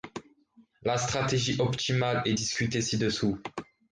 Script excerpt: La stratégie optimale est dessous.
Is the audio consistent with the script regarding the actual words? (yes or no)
no